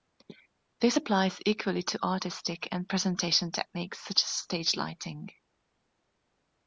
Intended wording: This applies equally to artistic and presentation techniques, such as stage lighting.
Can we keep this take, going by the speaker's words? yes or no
yes